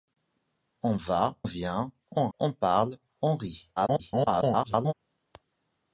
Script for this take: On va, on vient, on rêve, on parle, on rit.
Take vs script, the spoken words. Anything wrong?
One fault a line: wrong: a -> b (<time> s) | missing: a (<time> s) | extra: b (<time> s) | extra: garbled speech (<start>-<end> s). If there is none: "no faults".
missing: on (1.4 s)
missing: rêve (2.3 s)
extra: garbled speech (3.8-4.9 s)